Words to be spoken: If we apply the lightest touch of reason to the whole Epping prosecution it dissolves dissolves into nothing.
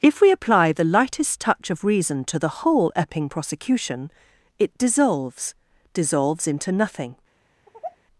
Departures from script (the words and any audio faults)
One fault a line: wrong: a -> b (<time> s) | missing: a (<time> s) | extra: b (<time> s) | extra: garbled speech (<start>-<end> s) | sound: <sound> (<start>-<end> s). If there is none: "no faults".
sound: sigh (7.7-8.0 s)